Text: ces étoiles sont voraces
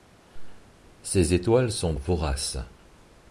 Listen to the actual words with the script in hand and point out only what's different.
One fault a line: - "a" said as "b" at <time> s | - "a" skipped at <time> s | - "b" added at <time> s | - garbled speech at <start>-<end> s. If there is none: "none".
none